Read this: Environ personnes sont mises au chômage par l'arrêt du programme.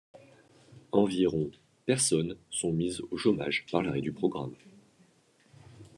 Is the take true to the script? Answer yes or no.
yes